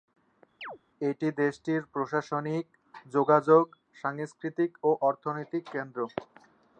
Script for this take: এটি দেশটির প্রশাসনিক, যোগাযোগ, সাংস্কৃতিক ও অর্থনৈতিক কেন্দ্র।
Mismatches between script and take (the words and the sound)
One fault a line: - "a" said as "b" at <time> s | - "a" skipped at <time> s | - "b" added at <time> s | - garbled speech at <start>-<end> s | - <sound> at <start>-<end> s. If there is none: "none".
- chirp at 0.6-0.8 s